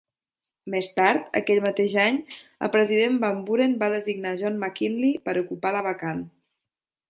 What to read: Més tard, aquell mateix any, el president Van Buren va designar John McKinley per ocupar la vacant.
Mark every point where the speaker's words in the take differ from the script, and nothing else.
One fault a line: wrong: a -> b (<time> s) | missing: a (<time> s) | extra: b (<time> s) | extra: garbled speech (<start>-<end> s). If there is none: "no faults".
no faults